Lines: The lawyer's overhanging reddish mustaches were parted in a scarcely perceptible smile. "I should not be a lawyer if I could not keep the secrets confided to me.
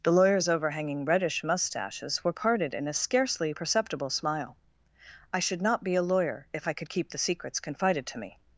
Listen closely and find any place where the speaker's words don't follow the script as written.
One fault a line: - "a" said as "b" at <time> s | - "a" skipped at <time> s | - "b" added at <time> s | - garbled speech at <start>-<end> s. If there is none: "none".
- "not" skipped at 6.9 s